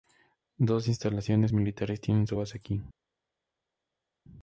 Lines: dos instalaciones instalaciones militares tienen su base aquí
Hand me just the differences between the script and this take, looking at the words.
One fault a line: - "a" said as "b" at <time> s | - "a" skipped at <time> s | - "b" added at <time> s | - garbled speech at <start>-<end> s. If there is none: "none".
- "instalaciones" skipped at 1.5 s